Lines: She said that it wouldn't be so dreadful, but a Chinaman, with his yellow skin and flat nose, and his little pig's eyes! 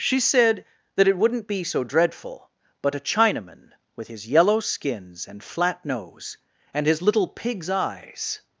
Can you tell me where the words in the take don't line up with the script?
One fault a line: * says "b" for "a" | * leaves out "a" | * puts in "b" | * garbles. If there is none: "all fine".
* says "skins" for "skin"